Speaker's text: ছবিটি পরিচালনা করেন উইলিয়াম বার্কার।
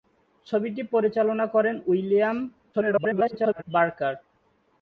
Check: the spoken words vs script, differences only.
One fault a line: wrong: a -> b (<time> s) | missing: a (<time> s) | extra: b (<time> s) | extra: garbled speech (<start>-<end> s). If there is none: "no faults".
extra: garbled speech (2.7-3.6 s)